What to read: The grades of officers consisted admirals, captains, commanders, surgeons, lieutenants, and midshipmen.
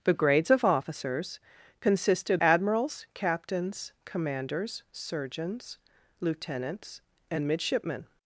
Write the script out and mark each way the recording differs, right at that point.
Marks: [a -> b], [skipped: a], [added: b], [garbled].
The grades of officers consisted admirals, captains, commanders, surgeons, lieutenants, and midshipmen.